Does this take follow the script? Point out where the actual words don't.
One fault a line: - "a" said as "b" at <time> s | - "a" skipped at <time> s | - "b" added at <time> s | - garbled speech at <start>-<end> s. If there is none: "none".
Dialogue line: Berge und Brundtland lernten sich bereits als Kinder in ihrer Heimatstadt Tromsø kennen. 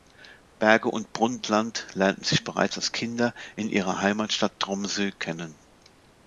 none